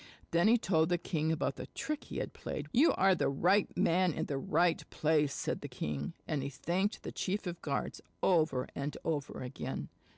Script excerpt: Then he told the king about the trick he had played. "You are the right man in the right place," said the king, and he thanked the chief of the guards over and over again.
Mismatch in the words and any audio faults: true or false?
false